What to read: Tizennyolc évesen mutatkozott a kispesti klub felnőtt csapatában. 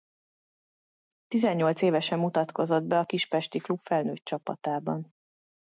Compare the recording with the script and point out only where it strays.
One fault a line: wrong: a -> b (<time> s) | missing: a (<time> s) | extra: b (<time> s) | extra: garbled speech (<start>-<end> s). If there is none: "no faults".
extra: be (2.8 s)